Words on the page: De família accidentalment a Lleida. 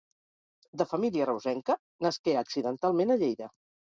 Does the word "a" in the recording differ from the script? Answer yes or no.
no